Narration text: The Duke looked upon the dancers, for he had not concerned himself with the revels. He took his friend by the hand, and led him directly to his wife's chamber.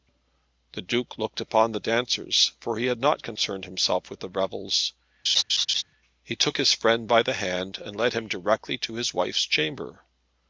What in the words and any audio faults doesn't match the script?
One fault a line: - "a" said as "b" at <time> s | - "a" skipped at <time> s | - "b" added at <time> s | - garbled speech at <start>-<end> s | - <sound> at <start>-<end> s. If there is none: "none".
- laugh at 5.2-5.8 s